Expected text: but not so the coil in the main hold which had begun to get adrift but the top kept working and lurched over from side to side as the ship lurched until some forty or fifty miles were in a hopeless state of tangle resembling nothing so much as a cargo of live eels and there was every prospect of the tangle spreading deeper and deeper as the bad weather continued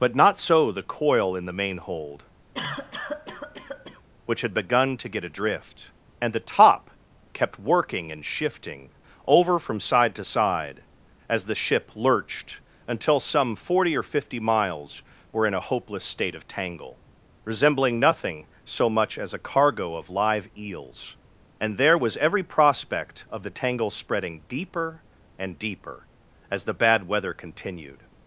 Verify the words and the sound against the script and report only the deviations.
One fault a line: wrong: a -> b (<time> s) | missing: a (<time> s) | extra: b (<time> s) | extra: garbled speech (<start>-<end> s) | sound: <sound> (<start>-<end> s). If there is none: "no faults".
sound: cough (2.5-4.0 s)
wrong: but -> and (6.2 s)
wrong: lurched -> shifting (8.2 s)